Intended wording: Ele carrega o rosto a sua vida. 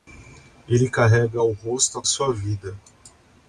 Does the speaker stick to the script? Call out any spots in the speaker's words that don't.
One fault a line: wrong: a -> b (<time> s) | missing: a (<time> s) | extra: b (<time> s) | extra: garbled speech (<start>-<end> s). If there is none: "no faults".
no faults